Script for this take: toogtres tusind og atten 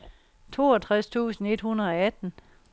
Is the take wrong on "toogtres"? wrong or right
right